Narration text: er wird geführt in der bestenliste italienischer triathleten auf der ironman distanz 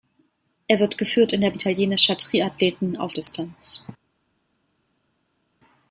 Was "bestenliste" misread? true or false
true